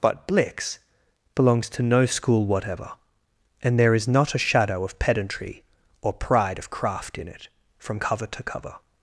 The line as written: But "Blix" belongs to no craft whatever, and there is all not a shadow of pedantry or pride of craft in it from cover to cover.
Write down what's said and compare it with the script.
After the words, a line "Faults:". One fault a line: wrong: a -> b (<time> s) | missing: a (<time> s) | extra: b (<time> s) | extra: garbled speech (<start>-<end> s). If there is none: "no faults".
But "Blix" belongs to no school whatever, and there is not a shadow of pedantry or pride of craft in it from cover to cover.
Faults:
wrong: craft -> school (2.0 s)
missing: all (4.1 s)